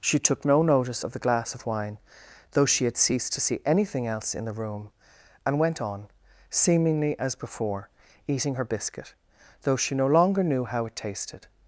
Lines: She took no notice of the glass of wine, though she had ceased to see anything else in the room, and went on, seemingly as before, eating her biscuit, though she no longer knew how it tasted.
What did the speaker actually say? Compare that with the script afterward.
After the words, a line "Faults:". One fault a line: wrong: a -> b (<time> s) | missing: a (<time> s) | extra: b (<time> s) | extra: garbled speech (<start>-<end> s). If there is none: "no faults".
She took no notice of the glass of wine, though she had ceased to see anything else in the room, and went on, seemingly as before, eating her biscuit, though she no longer knew how it tasted.
Faults:
no faults